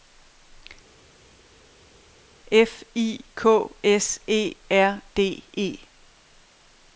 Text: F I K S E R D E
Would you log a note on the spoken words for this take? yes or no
no